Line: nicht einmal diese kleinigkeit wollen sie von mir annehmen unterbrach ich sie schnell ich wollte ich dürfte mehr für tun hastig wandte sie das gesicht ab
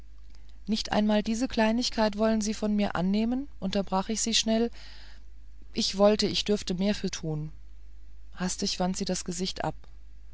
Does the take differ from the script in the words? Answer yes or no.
no